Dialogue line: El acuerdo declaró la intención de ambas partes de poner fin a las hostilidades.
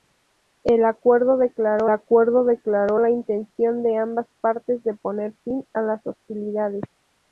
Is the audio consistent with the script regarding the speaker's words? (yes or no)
no